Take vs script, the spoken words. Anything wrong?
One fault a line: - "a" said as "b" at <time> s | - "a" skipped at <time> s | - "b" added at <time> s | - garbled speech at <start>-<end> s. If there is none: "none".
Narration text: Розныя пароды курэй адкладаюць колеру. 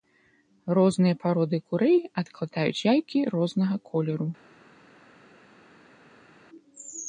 - "яйкі рознага" added at 2.9 s